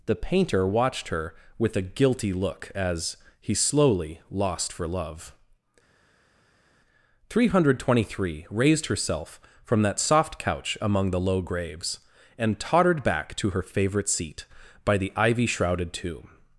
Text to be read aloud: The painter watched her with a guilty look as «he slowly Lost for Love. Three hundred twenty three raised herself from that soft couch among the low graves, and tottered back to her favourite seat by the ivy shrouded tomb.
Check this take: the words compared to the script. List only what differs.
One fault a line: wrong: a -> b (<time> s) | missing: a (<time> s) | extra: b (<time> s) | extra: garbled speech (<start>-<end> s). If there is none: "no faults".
no faults